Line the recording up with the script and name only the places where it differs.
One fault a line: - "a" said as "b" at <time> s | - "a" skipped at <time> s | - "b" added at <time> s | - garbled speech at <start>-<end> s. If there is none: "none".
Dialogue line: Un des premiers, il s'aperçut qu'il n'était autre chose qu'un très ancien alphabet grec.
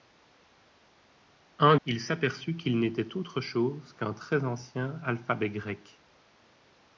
- "des premiers" skipped at 1.8 s